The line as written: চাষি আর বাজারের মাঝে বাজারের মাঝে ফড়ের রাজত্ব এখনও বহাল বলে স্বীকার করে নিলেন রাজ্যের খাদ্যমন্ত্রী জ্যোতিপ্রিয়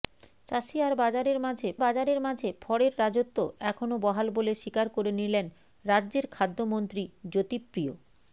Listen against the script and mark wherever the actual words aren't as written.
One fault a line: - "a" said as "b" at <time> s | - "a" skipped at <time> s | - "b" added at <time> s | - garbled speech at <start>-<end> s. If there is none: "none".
none